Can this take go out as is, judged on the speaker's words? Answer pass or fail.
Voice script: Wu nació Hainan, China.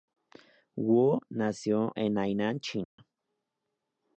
fail